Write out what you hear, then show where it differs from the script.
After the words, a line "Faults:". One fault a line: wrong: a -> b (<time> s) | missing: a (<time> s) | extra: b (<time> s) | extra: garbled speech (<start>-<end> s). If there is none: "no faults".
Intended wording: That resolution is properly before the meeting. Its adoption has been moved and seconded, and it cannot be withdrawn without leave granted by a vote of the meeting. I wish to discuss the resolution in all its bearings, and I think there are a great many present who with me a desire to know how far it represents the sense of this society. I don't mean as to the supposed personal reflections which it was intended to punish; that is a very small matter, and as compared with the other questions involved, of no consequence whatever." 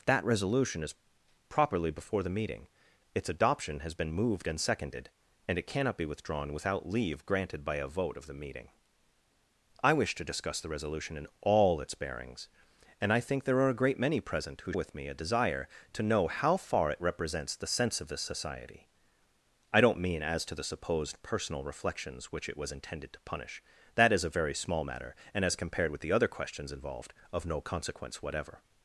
That resolution is properly before the meeting. Its adoption has been moved and seconded, and it cannot be withdrawn without leave granted by a vote of the meeting. I wish to discuss the resolution in all its bearings, and I think there are a great many present who with me a desire to know how far it represents the sense of this society. I don't mean as to the supposed personal reflections which it was intended to punish; that is a very small matter, and as compared with the other questions involved, of no consequence whatever."
Faults:
no faults